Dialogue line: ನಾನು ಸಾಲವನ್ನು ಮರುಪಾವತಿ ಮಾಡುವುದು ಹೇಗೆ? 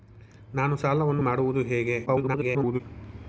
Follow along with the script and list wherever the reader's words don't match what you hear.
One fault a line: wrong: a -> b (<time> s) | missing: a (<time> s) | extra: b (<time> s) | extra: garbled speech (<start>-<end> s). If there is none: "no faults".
missing: ಮರುಪಾವತಿ (1.2 s)
extra: garbled speech (2.1-2.8 s)